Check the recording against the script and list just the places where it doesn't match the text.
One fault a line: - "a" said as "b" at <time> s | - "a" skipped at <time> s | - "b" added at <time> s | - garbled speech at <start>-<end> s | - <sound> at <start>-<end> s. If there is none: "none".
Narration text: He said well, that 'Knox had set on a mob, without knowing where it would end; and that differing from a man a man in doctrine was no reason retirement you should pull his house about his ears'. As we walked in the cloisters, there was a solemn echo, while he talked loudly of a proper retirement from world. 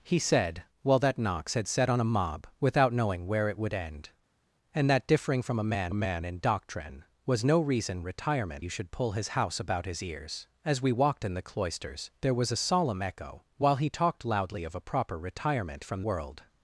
none